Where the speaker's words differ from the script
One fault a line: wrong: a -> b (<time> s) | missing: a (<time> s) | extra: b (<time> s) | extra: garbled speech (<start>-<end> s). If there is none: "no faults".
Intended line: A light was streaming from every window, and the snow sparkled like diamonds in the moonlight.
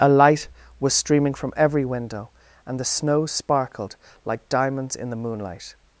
no faults